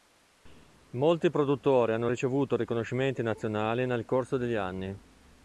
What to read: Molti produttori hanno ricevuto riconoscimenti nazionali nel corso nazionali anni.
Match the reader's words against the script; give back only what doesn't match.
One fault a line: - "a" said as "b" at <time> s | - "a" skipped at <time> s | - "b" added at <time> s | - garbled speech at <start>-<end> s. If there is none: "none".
- "nazionali" said as "degli" at 4.4 s